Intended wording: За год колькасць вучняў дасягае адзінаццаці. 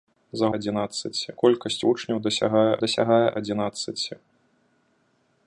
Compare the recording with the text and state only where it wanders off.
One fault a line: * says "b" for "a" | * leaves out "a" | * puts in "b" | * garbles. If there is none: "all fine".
* says "адзінаццаці" for "год"
* puts in "дасягае"